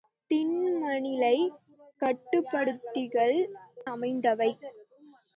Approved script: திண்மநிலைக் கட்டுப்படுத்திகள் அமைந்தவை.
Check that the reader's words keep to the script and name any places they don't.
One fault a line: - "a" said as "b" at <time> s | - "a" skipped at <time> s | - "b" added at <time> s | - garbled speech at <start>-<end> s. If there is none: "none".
none